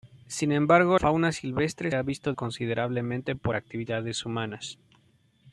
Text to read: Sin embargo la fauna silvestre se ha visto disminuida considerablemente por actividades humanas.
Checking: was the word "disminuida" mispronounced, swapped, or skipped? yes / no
yes